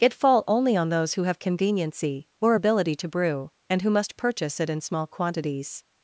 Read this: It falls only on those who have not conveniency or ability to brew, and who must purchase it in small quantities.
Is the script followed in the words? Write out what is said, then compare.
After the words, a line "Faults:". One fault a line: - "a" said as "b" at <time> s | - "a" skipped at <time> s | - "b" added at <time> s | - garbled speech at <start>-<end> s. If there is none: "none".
It fall only on those who have conveniency or ability to brew, and who must purchase it in small quantities.
Faults:
- "falls" said as "fall" at 0.1 s
- "not" skipped at 1.4 s